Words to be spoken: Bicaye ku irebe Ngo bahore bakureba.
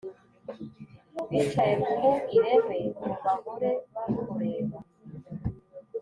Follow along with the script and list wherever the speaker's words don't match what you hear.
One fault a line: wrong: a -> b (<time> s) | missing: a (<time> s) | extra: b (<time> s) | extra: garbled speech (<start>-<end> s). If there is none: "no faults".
no faults